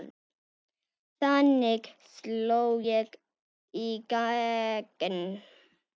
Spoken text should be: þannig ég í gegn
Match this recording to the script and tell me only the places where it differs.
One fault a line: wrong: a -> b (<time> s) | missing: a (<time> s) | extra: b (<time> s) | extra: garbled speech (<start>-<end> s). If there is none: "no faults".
extra: sló (2.1 s)